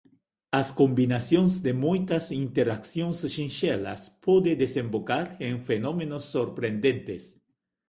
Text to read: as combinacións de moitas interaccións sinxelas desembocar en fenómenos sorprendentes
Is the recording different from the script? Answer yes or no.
yes